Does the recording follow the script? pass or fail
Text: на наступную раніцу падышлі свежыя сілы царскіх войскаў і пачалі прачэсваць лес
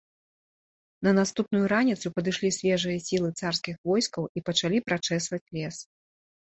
pass